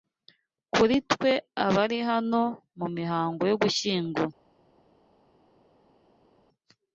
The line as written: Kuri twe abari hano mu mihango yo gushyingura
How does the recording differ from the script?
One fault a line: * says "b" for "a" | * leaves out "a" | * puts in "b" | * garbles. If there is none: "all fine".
all fine